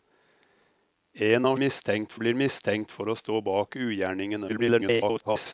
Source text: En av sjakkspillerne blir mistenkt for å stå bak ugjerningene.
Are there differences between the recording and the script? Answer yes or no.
yes